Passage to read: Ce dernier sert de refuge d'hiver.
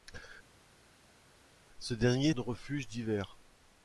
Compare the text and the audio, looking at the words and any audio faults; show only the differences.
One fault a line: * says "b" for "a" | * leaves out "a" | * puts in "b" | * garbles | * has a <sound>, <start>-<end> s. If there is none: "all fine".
* leaves out "sert"